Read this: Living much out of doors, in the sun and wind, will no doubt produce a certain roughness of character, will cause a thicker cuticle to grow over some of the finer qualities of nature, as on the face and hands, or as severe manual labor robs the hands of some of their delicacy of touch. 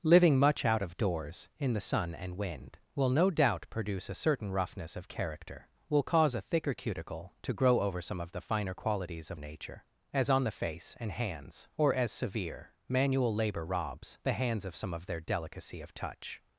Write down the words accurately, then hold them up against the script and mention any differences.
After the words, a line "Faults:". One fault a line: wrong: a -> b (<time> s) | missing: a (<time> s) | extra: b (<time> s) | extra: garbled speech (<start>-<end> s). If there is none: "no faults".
Living much out of doors, in the sun and wind, will no doubt produce a certain roughness of character, will cause a thicker cuticle to grow over some of the finer qualities of nature, as on the face and hands, or as severe manual labor robs the hands of some of their delicacy of touch.
Faults:
no faults